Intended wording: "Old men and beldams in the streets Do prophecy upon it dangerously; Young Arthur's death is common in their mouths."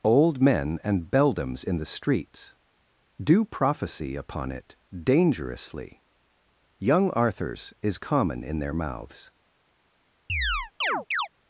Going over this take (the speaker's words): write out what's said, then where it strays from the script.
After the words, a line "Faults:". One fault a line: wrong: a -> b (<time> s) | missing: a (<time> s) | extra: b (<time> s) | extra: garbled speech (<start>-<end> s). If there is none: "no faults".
"Old men and beldams in the streets Do prophecy upon it dangerously; Young Arthur's is common in their mouths."
Faults:
missing: death (7.7 s)